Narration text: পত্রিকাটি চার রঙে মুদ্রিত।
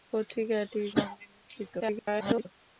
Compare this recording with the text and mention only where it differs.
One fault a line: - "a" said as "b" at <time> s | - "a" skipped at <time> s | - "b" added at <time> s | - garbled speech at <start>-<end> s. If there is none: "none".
- "চার" skipped at 0.8 s
- garbled speech at 1.8-2.5 s